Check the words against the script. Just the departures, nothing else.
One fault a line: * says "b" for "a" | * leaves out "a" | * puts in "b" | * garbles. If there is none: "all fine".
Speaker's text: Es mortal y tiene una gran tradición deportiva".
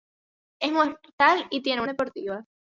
* leaves out "una gran tradición"